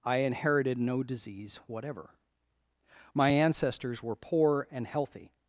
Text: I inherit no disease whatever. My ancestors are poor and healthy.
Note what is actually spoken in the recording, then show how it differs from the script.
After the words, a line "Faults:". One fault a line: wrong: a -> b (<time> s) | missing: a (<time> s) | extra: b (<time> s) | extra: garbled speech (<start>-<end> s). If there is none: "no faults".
I inherited no disease whatever. My ancestors were poor and healthy.
Faults:
wrong: inherit -> inherited (0.2 s)
wrong: are -> were (4.0 s)